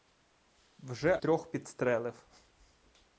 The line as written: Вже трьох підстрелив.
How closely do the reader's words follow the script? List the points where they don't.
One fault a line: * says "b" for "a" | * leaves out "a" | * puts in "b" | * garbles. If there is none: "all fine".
all fine